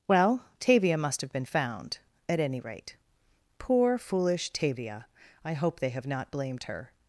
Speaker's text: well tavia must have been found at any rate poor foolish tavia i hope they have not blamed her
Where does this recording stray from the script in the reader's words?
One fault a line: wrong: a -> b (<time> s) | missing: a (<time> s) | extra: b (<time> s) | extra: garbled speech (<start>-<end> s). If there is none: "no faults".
no faults